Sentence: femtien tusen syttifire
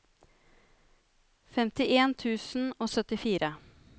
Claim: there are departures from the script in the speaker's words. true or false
true